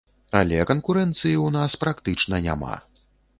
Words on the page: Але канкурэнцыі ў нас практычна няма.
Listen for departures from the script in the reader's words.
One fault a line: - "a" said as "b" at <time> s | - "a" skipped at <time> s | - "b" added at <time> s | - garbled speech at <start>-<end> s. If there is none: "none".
none